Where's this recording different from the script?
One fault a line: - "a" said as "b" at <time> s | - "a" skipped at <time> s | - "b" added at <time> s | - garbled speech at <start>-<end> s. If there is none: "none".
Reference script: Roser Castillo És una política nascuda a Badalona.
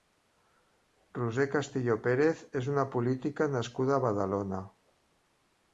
- "Pérez" added at 2.1 s